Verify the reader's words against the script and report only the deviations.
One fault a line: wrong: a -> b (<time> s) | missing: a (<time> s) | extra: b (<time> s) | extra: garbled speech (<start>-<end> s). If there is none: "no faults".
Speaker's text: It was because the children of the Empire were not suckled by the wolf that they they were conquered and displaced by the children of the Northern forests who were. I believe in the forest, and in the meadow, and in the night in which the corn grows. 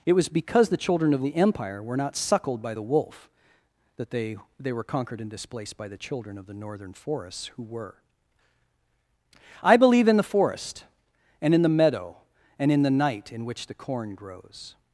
no faults